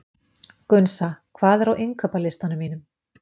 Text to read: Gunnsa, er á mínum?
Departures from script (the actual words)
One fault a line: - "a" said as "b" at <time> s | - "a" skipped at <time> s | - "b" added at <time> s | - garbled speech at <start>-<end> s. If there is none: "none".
- "hvað" added at 1.4 s
- "innkaupalistanum" added at 1.9 s